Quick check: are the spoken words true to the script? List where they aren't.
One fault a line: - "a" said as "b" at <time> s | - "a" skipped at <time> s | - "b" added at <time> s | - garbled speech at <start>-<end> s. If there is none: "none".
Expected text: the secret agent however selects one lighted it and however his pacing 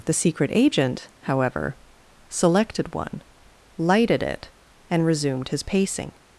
- "selects" said as "selected" at 2.3 s
- "however" said as "resumed" at 5.0 s